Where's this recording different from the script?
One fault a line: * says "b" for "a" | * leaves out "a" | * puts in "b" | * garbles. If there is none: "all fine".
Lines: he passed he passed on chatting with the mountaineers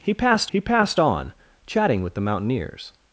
all fine